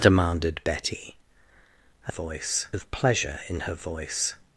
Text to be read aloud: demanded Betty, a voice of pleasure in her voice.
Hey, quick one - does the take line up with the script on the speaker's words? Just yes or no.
yes